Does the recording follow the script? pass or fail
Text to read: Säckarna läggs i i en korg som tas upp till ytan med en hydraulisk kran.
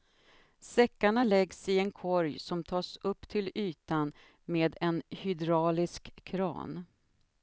fail